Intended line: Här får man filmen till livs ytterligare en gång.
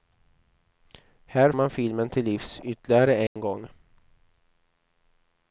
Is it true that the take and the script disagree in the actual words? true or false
true